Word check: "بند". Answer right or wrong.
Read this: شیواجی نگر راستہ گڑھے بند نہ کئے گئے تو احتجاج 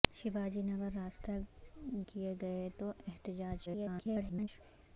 wrong